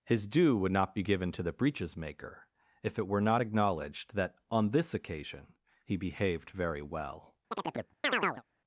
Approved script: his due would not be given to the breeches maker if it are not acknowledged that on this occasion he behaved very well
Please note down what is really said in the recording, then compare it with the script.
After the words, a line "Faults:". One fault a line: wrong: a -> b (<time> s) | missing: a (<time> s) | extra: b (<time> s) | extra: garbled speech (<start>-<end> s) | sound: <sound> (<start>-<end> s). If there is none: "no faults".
his due would not be given to the breeches maker if it were not acknowledged that on this occasion he behaved very well
Faults:
wrong: are -> were (3.1 s)
sound: chirp (7.5-8.4 s)